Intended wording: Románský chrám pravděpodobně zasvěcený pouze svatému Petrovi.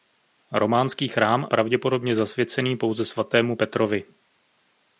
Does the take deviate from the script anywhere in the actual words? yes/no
no